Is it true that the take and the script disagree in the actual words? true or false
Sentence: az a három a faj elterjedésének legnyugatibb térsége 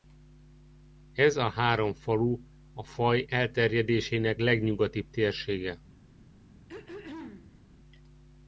true